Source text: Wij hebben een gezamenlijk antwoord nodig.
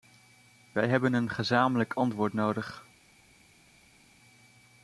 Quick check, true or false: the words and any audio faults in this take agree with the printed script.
true